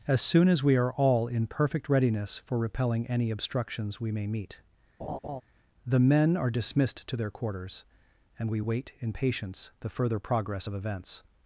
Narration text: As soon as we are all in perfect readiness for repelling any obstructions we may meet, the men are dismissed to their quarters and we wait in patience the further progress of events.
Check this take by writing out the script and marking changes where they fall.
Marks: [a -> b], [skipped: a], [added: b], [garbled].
As soon as we are all in perfect readiness for repelling any obstructions we may meet, the men are dismissed to their quarters and we wait in patience the further progress of events.